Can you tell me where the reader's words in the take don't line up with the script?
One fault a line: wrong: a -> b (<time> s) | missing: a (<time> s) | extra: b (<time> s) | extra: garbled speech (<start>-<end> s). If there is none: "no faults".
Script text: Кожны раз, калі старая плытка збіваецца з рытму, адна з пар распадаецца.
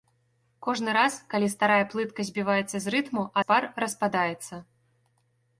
missing: адна (3.2 s)